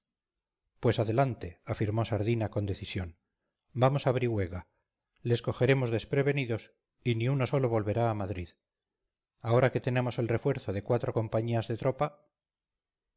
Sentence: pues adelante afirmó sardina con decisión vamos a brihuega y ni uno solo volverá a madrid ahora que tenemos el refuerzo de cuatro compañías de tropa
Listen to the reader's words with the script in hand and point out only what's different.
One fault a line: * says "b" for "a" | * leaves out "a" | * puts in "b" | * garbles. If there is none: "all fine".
* puts in "les cogeremos desprevenidos"